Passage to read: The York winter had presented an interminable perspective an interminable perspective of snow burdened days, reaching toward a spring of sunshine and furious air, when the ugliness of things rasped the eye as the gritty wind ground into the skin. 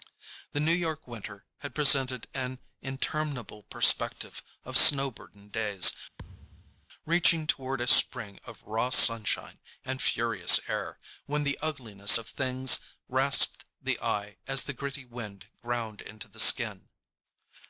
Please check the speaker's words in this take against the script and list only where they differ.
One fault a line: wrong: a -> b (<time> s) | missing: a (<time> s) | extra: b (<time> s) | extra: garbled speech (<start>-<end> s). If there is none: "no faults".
extra: New (0.6 s)
missing: an interminable perspective (4.4 s)
extra: raw (8.6 s)